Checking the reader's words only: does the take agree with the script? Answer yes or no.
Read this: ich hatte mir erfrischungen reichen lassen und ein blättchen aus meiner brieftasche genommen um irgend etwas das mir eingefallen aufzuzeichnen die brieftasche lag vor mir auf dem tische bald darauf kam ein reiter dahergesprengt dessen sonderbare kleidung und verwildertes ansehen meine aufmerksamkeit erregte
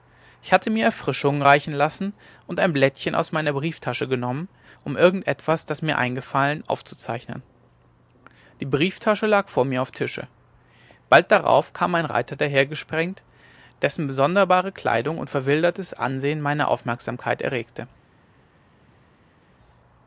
no